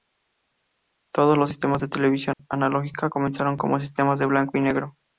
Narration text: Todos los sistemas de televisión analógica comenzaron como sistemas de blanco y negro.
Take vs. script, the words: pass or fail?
pass